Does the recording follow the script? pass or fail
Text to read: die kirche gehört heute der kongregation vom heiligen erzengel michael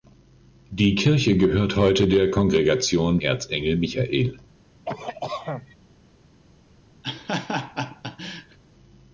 fail